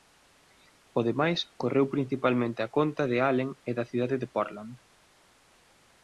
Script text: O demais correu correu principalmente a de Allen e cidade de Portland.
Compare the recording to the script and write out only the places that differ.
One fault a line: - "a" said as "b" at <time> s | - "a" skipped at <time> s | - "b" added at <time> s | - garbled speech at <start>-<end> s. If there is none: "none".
- "correu" skipped at 1.9 s
- "conta" added at 2.8 s
- "da" added at 3.8 s